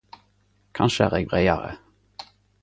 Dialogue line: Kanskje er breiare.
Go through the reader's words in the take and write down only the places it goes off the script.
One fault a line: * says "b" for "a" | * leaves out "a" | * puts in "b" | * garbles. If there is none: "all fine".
* puts in "eg"